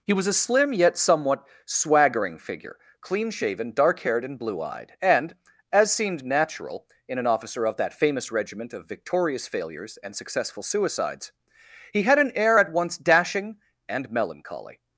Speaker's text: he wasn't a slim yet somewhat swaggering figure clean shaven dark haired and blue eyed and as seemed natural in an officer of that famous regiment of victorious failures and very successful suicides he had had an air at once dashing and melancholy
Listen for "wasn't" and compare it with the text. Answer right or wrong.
wrong